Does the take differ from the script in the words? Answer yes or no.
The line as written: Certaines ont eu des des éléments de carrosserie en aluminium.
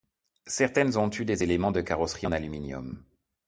yes